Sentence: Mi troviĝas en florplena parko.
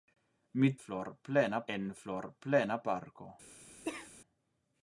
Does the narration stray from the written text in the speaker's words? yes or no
yes